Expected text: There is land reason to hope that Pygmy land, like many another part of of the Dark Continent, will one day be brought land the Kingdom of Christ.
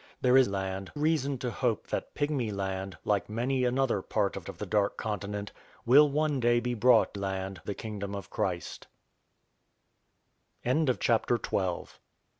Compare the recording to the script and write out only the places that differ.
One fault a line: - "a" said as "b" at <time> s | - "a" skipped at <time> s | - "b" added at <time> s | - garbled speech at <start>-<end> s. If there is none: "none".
none